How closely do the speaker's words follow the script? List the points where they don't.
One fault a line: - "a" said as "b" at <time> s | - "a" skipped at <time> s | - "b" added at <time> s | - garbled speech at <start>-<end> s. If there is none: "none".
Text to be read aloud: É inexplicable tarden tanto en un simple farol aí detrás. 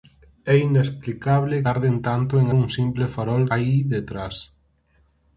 none